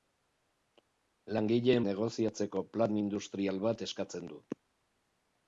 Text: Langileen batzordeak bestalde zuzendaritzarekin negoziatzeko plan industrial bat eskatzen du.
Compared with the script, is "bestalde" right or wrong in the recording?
wrong